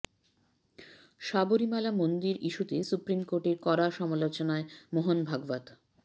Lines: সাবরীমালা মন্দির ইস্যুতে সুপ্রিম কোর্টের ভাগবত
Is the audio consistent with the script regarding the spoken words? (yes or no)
no